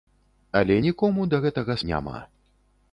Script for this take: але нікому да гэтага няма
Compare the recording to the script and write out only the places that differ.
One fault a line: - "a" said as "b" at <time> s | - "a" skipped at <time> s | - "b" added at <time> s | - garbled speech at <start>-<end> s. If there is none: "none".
none